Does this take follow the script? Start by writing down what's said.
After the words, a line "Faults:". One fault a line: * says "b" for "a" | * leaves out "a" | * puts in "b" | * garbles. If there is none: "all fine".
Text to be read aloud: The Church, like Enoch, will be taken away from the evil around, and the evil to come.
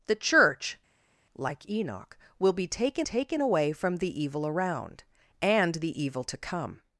The Church, like Enoch, will be taken taken away from the evil around, and the evil to come.
Faults:
* puts in "taken"